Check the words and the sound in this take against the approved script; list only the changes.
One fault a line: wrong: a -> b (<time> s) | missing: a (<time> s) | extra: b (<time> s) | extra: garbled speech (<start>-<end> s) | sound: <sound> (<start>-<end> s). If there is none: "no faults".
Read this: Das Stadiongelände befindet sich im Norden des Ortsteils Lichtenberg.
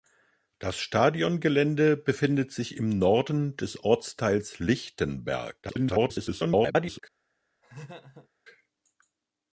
extra: garbled speech (5.6-7.0 s)
sound: laugh (7.6-8.3 s)